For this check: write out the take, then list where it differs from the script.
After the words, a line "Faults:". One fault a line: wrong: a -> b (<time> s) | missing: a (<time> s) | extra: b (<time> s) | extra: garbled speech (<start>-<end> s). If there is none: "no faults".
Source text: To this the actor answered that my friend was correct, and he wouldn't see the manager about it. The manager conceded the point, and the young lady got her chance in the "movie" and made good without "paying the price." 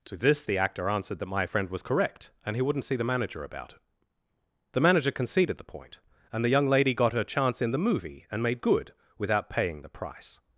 To this the actor answered that my friend was correct, and he wouldn't see the manager about it. The manager conceded the point, and the young lady got her chance in the "movie" and made good without "paying the price."
Faults:
no faults